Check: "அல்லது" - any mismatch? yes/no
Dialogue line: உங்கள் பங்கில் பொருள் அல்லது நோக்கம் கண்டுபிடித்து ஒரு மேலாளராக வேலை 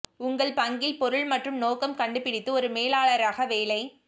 yes